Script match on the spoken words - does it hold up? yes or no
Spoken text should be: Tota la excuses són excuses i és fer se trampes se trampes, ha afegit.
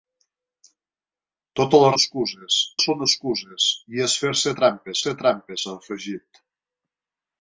yes